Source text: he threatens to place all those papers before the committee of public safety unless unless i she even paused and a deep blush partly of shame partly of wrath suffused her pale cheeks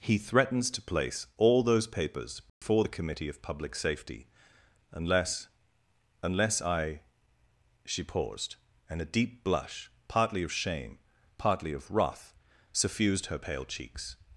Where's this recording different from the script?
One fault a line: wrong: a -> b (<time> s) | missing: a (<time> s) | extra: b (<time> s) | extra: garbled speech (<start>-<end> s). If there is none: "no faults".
missing: even (8.0 s)